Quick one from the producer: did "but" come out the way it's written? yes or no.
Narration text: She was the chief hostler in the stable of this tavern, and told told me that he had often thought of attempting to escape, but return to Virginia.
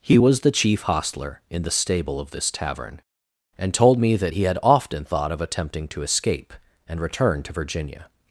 no